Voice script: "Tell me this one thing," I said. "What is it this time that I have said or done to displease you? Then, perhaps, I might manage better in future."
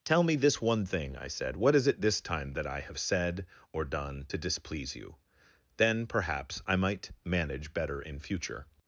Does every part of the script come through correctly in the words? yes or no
yes